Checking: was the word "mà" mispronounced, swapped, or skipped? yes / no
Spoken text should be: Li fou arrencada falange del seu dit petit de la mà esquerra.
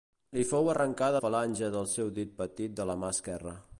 no